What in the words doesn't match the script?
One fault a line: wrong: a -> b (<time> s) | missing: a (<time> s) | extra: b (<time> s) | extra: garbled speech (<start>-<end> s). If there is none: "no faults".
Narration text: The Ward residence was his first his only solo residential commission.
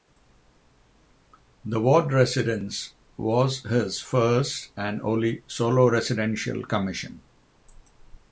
wrong: his -> and (4.8 s)